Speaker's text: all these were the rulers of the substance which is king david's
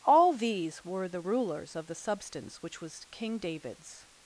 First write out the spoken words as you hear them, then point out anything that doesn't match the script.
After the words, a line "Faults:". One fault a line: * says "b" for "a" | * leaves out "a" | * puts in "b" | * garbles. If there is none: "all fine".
all these were the rulers of the substance which was king david's
Faults:
* says "was" for "is"